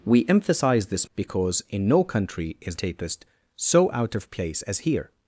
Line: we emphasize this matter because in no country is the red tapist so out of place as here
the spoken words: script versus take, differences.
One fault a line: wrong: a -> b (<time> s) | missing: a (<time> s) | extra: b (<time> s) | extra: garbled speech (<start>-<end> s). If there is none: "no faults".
missing: matter (1.1 s)
missing: the red (2.8 s)